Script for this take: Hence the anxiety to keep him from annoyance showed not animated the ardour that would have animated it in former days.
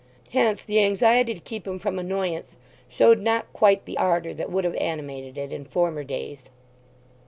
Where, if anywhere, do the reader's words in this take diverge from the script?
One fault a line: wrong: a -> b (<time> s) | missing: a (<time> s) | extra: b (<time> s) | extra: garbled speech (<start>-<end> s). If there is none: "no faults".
wrong: animated -> quite (3.5 s)